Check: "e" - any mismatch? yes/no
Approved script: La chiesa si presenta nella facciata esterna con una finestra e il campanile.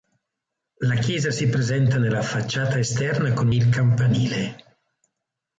yes